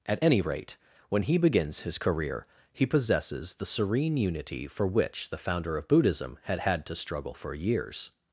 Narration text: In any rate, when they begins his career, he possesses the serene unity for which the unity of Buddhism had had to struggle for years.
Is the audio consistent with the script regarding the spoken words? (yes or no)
no